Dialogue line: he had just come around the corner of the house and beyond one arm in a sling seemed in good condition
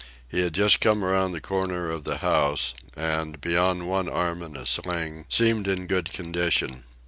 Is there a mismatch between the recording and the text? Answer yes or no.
no